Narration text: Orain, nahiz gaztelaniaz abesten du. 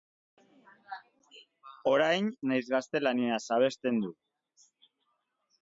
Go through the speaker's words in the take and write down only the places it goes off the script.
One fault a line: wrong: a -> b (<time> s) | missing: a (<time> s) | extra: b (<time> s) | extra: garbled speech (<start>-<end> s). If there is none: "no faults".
no faults